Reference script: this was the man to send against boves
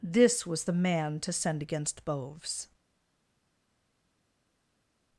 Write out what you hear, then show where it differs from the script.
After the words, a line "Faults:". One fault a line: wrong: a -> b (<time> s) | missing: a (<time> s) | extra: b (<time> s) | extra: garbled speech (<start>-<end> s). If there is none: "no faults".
this was the man to send against boves
Faults:
no faults